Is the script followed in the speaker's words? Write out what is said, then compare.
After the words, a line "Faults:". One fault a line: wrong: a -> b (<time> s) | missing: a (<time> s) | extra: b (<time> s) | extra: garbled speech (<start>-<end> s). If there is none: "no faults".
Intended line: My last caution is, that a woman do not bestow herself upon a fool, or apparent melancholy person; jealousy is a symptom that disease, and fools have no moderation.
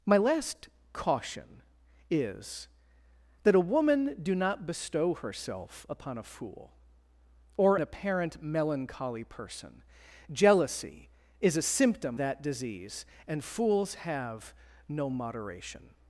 My last caution is, that a woman do not bestow herself upon a fool, or apparent melancholy person; jealousy is a symptom that disease, and fools have no moderation.
Faults:
no faults